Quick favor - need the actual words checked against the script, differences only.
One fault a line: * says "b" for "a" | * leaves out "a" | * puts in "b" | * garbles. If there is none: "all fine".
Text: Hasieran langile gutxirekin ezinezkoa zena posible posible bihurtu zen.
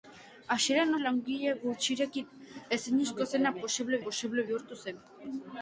all fine